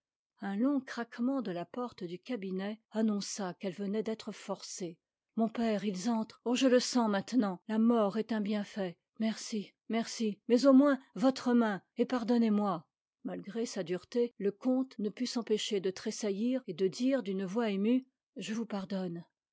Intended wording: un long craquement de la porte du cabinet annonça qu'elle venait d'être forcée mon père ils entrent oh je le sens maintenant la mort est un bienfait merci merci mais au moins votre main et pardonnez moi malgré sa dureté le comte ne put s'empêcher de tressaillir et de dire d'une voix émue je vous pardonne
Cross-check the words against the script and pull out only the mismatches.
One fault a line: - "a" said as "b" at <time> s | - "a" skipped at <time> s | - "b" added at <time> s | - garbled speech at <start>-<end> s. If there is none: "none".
none